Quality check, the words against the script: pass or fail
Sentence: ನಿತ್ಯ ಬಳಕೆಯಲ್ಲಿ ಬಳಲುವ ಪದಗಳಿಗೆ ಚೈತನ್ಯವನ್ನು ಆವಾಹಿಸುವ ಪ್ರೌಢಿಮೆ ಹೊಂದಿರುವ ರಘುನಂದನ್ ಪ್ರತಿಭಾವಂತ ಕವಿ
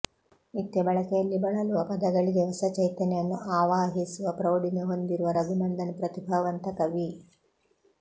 fail